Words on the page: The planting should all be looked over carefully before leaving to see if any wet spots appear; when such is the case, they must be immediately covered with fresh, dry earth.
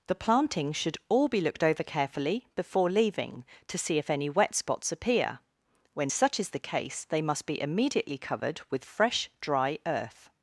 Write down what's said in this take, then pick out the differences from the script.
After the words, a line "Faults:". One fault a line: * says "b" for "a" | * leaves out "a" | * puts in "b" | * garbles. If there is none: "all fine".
The planting should all be looked over carefully before leaving to see if any wet spots appear; when such is the case, they must be immediately covered with fresh, dry earth.
Faults:
all fine